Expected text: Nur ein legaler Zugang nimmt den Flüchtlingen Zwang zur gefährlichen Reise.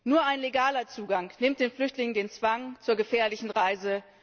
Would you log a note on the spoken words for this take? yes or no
yes